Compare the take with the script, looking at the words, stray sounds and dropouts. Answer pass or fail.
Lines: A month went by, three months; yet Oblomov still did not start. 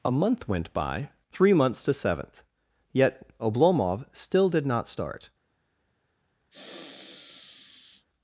fail